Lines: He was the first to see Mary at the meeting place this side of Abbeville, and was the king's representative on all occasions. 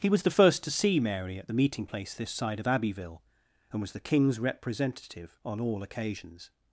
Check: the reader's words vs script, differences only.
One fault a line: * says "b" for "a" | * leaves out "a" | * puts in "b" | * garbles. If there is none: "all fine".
all fine